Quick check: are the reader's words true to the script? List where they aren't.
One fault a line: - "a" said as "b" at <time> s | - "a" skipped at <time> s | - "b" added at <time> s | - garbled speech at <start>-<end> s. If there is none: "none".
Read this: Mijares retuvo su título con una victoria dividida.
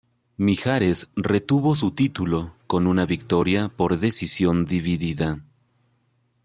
- "por decisión" added at 3.7 s